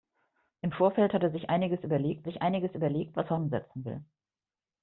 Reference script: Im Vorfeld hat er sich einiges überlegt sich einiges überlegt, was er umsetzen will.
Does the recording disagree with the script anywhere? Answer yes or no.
no